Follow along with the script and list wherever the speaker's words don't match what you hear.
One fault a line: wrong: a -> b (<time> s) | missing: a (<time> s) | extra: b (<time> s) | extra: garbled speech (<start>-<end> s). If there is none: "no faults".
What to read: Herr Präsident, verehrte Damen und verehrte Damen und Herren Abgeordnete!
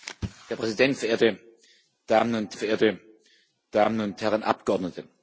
no faults